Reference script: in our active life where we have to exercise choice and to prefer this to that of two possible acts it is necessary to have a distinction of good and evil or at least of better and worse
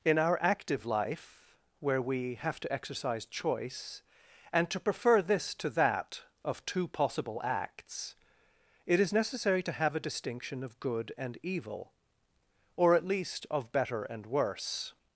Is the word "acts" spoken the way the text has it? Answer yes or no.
yes